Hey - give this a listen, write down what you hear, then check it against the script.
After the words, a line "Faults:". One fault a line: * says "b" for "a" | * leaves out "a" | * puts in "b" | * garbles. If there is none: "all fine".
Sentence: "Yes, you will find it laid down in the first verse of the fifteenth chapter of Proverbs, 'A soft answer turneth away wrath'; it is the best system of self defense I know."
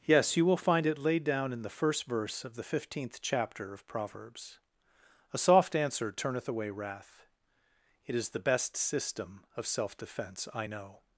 "Yes, you will find it laid down in the first verse of the fifteenth chapter of Proverbs, 'A soft answer turneth away wrath'; it is the best system of self defense I know."
Faults:
all fine